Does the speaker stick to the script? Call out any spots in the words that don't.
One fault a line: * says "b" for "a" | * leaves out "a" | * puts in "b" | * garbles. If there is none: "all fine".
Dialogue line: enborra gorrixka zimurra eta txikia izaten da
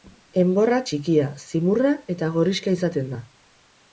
* says "txikia" for "gorrixka"
* says "gorrixka" for "txikia"